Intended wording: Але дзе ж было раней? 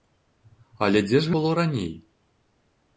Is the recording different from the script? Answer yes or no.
no